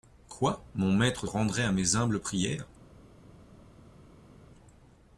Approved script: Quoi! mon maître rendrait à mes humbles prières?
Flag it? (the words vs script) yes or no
no